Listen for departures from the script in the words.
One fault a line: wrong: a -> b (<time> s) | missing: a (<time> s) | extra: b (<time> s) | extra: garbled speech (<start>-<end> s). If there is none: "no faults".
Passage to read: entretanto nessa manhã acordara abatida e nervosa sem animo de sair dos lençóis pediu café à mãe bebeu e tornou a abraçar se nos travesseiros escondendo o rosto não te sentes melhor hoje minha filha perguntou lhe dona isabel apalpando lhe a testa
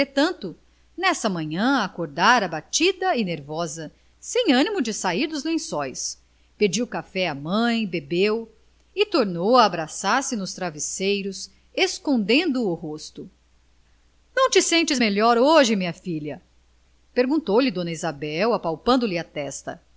no faults